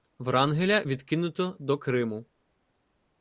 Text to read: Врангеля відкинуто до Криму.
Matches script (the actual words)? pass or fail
pass